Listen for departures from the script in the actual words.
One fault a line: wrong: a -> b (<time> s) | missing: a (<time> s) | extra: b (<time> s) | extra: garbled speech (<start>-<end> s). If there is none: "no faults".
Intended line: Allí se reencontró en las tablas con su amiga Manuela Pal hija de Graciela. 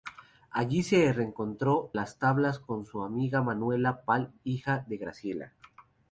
missing: en (1.9 s)